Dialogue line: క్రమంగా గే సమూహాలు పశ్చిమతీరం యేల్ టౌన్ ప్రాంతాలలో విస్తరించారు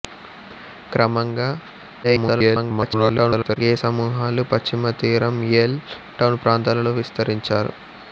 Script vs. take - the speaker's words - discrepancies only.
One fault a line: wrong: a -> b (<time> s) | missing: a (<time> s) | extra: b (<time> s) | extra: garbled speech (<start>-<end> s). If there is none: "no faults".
extra: garbled speech (2.0-3.6 s)